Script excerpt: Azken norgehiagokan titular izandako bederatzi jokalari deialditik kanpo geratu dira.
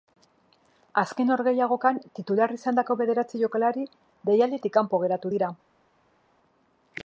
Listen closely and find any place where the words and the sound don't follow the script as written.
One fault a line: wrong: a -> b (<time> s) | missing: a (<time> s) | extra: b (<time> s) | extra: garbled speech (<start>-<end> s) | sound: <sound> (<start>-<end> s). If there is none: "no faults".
no faults